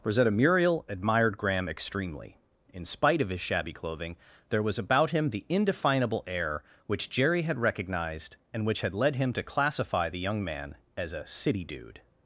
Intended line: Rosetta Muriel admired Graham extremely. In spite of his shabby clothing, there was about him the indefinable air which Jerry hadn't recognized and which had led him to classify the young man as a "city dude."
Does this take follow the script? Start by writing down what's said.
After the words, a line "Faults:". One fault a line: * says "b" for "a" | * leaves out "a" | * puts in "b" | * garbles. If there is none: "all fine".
Rosetta Muriel admired Graham extremely. In spite of his shabby clothing, there was about him the indefinable air which Jerry had recognized and which had led him to classify the young man as a "city dude."
Faults:
* says "had" for "hadn't"